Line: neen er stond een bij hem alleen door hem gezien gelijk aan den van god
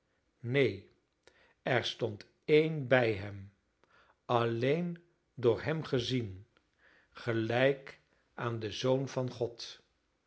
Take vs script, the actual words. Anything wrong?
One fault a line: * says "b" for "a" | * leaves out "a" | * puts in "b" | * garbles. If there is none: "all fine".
* puts in "zoon"